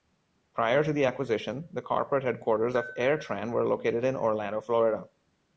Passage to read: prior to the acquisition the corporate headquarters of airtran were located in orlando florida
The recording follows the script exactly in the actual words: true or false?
true